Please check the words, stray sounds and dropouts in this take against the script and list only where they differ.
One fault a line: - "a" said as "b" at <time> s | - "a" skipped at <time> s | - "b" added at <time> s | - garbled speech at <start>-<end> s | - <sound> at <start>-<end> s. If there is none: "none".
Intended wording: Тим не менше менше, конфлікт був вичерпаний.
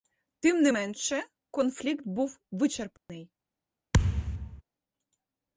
- "менше" skipped at 1.2 s
- dropout at 3.0-3.1 s
- thud at 3.9-4.6 s